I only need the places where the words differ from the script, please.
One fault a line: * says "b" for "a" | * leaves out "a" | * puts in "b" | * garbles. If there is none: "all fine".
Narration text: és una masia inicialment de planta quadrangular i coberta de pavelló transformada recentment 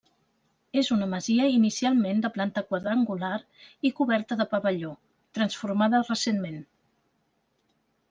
all fine